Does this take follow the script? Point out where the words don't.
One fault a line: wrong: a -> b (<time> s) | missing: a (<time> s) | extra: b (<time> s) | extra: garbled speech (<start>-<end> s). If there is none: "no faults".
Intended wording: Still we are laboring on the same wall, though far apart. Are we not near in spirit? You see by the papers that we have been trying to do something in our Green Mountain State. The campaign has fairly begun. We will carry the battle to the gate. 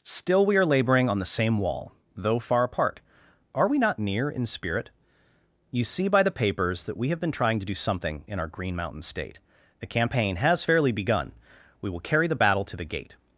no faults